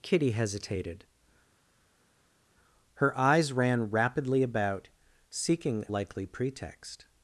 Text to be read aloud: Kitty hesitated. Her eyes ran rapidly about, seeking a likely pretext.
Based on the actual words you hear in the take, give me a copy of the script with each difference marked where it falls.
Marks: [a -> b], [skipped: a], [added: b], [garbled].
Kitty hesitated. Her eyes ran rapidly about, seeking [skipped: a] likely pretext.